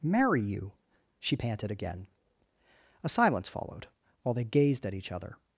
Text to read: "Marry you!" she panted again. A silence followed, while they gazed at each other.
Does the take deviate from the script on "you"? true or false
false